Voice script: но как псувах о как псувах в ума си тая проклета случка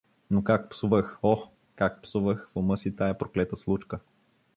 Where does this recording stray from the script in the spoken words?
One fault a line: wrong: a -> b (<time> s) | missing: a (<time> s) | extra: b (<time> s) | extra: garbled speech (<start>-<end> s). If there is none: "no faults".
no faults